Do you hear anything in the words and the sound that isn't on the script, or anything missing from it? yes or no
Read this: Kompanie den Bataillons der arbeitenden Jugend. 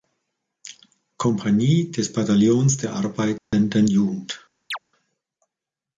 yes